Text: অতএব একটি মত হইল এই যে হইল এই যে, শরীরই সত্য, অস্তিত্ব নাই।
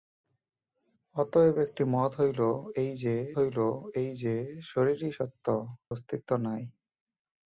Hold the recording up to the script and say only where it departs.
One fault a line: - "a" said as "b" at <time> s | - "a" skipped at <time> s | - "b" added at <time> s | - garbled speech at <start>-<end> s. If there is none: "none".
none